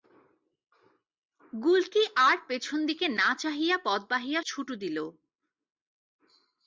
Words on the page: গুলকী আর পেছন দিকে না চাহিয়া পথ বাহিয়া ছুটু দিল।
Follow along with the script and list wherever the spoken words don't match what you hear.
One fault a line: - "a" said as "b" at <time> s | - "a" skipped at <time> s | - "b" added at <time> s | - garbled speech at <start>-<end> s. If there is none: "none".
none